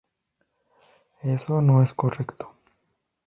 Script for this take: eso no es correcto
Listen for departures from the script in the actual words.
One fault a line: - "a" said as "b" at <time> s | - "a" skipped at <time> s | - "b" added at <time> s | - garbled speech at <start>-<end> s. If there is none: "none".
none